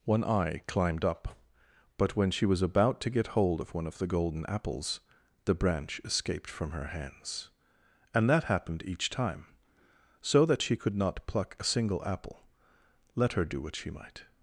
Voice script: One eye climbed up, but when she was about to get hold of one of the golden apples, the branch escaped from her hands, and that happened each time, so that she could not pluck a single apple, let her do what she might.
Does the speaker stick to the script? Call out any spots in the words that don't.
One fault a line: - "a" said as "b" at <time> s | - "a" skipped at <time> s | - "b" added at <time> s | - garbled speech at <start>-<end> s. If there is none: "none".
none